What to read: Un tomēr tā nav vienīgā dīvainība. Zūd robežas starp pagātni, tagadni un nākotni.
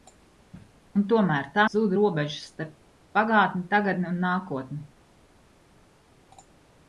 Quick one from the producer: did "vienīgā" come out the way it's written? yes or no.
no